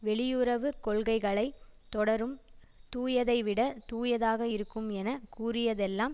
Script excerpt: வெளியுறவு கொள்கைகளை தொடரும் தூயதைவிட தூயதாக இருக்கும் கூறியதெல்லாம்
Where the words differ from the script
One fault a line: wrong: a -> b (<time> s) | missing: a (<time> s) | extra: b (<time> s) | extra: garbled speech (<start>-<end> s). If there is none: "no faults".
extra: என (4.9 s)